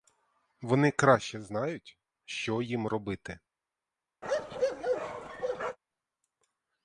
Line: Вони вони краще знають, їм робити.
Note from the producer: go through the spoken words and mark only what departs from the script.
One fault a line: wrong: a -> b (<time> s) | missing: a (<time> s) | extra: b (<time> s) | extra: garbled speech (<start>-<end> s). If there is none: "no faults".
missing: вони (0.9 s)
extra: що (2.2 s)